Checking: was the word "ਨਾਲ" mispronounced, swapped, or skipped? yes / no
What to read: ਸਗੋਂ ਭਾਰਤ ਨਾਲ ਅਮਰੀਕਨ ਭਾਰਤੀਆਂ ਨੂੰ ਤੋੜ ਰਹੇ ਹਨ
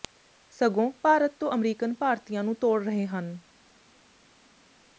yes